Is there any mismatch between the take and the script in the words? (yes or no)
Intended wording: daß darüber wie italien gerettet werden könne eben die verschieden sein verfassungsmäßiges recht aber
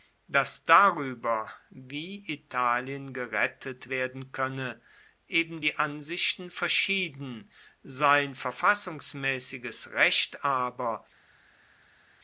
yes